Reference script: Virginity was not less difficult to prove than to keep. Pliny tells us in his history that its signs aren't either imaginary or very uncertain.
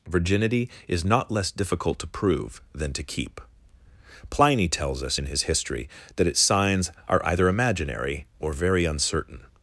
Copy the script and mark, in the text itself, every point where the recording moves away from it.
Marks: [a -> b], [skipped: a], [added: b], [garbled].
Virginity [was -> is] not less difficult to prove than to keep. Pliny tells us in his history that its signs [aren't -> are] either imaginary or very uncertain.